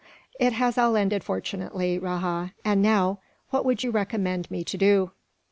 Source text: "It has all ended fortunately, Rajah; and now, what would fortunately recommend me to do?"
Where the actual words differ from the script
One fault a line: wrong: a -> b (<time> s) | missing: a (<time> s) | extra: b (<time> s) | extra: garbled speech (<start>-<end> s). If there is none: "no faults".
wrong: fortunately -> you (3.8 s)